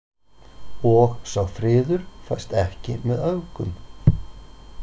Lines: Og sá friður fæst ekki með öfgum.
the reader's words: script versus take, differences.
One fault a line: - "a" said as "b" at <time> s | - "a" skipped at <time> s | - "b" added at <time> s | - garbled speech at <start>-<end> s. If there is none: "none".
none